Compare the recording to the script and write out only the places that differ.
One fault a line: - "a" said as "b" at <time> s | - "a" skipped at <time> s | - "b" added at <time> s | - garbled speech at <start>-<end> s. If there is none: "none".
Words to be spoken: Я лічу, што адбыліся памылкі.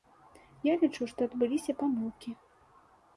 none